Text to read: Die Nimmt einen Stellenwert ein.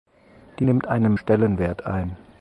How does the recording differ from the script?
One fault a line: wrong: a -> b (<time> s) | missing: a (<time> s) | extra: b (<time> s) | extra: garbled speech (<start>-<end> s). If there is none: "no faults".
no faults